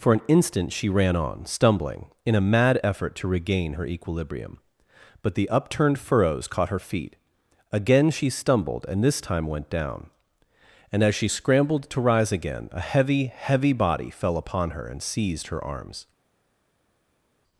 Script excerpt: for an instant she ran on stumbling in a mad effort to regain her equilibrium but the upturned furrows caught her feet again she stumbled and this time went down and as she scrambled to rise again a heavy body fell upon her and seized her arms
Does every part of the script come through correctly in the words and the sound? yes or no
no